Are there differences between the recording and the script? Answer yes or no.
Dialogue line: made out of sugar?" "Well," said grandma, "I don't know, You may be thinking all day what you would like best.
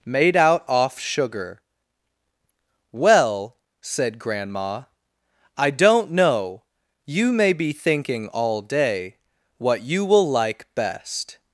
yes